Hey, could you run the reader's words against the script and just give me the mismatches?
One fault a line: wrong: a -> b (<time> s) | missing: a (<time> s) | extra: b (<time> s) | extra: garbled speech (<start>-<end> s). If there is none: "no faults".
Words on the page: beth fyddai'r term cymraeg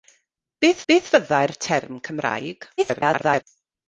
extra: beth (0.9 s)
extra: garbled speech (2.8-3.4 s)